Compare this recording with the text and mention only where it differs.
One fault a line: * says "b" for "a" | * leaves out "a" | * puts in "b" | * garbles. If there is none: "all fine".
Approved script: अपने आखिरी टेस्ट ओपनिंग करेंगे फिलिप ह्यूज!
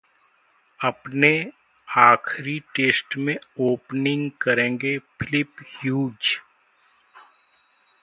* puts in "में"